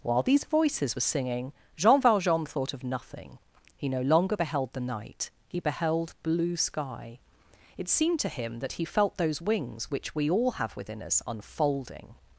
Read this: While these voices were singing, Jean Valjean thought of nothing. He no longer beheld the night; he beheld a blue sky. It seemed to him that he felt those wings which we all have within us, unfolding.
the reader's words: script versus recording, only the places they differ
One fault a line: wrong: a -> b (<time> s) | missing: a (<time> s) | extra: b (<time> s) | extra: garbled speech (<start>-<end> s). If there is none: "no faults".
missing: a (6.1 s)